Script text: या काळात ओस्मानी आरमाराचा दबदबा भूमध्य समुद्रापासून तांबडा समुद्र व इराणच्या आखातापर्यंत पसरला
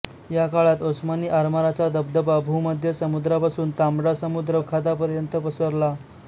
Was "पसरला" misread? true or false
false